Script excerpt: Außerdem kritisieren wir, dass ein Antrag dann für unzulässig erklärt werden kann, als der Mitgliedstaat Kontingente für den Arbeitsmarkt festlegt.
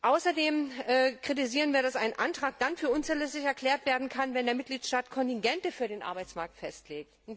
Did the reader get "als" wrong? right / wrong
wrong